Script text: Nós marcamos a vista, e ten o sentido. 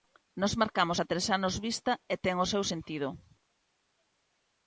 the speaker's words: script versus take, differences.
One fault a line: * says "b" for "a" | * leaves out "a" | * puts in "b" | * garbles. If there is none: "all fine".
* puts in "tres anos"
* puts in "seu"